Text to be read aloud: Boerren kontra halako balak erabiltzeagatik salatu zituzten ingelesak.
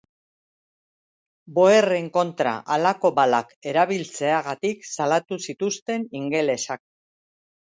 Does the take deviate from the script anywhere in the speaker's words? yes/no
no